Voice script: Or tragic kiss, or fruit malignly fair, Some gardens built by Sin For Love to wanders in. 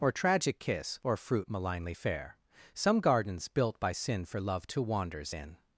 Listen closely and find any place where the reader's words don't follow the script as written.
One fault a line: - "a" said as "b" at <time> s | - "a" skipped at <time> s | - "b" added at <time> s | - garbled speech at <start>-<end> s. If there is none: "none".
none